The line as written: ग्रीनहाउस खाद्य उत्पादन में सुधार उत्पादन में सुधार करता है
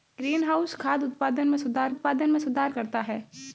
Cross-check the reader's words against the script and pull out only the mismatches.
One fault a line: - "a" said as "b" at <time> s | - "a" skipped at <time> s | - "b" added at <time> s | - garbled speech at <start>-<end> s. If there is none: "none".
none